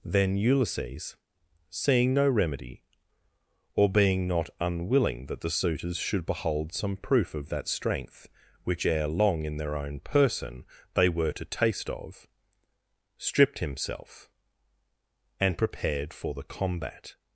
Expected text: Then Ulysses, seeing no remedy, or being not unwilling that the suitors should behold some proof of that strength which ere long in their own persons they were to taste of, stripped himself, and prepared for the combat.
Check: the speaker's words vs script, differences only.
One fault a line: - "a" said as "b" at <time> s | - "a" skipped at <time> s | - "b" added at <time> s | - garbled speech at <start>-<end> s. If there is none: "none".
- "persons" said as "person" at 10.0 s